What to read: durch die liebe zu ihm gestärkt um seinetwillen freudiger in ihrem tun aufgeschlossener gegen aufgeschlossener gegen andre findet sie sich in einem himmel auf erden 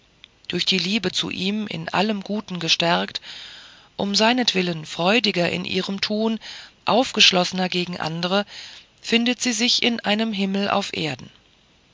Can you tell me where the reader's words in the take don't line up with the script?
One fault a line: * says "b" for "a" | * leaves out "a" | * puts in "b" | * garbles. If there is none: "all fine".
* puts in "in allem guten"
* leaves out "aufgeschlossener gegen"